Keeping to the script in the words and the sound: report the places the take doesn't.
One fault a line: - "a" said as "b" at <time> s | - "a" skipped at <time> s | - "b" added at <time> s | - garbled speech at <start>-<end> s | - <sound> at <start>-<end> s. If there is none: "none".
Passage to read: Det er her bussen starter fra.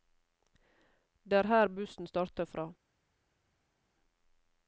none